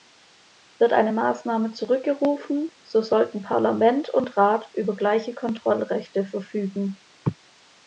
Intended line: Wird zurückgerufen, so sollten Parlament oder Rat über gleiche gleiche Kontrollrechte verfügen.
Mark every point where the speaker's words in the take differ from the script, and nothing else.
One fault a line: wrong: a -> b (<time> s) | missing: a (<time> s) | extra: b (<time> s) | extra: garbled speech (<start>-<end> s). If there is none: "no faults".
extra: eine Maßnahme (0.9 s)
wrong: oder -> und (4.1 s)
missing: gleiche (5.3 s)